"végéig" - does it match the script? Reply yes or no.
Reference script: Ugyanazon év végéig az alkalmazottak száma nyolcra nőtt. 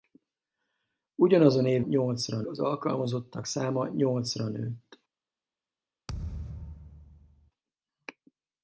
no